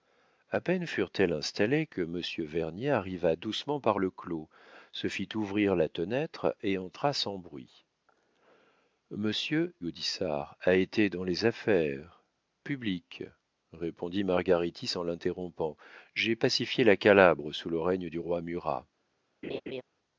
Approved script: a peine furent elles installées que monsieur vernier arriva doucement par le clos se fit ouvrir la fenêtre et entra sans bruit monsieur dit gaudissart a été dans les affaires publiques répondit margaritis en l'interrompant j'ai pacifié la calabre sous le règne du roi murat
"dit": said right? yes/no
no